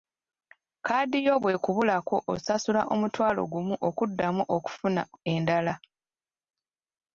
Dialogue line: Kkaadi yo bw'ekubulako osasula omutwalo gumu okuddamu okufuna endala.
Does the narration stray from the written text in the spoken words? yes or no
no